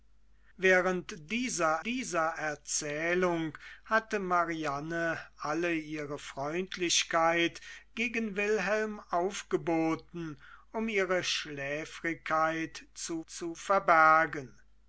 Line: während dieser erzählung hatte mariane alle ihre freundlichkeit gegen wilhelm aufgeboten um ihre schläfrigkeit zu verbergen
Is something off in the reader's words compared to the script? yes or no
yes